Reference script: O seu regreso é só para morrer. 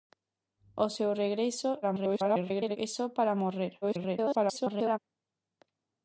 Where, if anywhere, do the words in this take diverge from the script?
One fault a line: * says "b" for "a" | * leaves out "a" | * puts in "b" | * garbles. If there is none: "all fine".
* garbles
* garbles